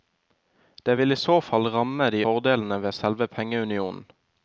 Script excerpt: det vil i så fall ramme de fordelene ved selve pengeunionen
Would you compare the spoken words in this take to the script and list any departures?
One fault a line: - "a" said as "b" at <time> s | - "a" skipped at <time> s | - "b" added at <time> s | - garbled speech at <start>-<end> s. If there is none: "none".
none